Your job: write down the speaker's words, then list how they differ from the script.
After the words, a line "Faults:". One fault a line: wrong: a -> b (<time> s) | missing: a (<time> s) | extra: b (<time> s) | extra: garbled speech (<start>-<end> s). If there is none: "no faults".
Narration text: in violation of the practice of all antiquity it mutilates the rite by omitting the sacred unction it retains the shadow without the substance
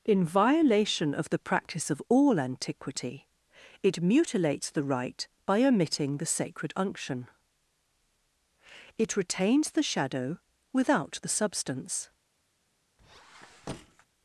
in violation of the practice of all antiquity it mutilates the rite by omitting the sacred unction it retains the shadow without the substance
Faults:
no faults